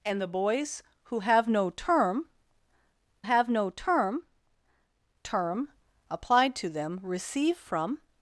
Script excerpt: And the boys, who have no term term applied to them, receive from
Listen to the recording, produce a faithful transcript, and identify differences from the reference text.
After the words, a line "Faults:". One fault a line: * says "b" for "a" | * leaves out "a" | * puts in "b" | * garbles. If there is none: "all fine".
And the boys, who have no term have no term term applied to them, receive from
Faults:
* puts in "have no term"